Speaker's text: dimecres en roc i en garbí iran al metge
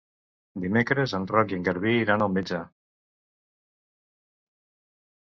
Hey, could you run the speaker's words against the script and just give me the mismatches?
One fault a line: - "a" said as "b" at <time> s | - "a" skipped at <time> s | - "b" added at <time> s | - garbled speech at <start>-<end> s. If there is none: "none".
none